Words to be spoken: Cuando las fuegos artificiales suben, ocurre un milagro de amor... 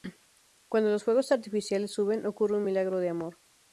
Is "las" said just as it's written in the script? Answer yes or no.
no